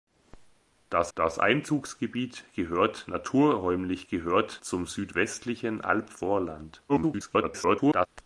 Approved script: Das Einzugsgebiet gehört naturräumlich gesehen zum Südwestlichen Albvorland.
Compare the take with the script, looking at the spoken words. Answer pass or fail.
fail